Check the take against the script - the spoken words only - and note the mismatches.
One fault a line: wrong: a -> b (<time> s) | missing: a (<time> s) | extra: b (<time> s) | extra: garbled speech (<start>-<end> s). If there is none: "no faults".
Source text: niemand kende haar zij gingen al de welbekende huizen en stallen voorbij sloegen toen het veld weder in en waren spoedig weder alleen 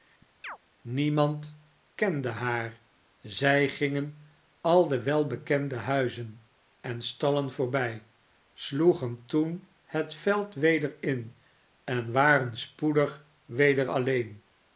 no faults